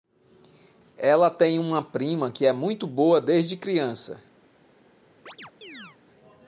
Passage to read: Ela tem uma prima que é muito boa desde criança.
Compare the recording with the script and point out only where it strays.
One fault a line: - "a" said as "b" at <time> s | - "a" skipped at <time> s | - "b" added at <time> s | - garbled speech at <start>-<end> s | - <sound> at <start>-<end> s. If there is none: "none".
- chirp at 5.3-6.0 s